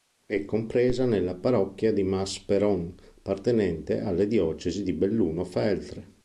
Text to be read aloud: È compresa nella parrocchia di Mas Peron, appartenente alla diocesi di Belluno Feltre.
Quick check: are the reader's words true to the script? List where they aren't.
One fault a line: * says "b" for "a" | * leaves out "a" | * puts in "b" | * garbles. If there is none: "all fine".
all fine